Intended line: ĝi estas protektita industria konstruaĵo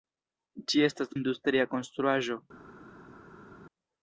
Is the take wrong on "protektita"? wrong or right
wrong